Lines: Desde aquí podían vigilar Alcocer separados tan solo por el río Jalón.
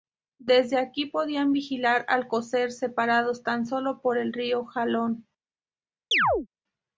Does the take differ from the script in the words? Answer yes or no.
no